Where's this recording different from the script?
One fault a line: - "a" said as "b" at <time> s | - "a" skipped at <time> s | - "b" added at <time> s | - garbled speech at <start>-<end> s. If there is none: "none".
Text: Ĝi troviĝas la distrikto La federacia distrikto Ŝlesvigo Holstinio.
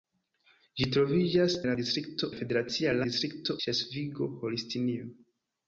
none